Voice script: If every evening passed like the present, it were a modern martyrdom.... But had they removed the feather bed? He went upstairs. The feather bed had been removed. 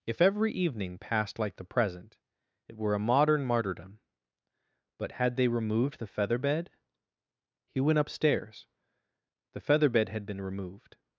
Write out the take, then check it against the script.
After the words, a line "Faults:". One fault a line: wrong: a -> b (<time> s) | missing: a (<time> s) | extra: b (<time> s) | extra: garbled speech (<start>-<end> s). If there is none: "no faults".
If every evening passed like the present, it were a modern martyrdom.... But had they removed the feather bed? He went upstairs. The feather bed had been removed.
Faults:
no faults